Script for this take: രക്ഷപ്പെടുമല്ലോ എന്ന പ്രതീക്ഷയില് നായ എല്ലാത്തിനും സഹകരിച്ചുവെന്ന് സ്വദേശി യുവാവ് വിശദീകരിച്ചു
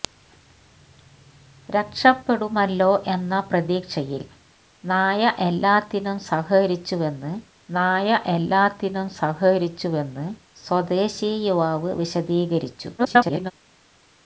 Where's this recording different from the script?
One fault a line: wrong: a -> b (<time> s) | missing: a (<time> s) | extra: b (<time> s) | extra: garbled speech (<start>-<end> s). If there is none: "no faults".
extra: നായ എല്ലാത്തിനും സഹകരിച്ചുവെന്ന് (7.7 s)
extra: garbled speech (13.0-13.5 s)